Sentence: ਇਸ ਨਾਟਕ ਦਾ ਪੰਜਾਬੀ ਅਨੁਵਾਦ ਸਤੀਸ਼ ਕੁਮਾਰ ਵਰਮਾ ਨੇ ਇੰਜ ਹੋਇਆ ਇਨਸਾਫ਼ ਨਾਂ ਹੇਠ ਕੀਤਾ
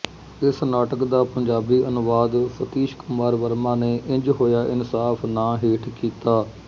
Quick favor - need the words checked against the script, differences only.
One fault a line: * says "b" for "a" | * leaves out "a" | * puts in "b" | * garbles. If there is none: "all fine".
all fine